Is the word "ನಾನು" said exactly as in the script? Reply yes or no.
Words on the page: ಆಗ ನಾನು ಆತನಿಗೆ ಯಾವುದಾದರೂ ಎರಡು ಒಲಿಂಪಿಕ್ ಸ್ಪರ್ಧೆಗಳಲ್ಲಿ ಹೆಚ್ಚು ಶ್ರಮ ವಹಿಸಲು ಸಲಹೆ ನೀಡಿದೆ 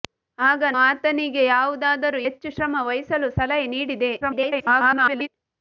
no